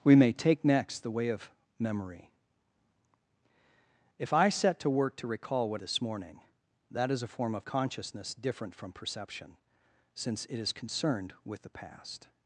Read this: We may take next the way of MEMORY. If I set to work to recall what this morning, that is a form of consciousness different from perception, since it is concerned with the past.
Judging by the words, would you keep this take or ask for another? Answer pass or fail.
pass